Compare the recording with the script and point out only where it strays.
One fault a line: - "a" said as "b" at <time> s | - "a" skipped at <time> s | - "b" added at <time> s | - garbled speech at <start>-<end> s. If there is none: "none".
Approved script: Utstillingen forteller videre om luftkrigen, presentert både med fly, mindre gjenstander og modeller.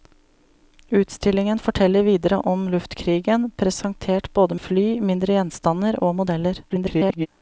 - "med" skipped at 4.5 s
- garbled speech at 6.7-7.3 s